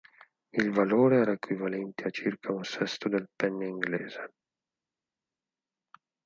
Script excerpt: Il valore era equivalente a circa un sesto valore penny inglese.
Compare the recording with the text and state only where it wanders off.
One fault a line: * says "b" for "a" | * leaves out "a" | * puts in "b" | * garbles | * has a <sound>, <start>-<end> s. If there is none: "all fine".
* says "del" for "valore"